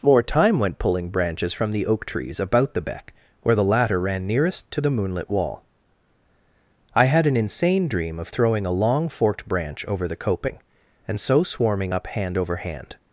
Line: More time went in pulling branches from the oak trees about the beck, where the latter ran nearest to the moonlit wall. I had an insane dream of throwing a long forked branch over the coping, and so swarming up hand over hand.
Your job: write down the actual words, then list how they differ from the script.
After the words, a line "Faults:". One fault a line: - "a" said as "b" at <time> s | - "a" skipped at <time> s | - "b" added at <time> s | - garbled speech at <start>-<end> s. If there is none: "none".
More time went pulling branches from the oak trees about the beck, where the latter ran nearest to the moonlit wall. I had an insane dream of throwing a long forked branch over the coping, and so swarming up hand over hand.
Faults:
- "in" skipped at 0.8 s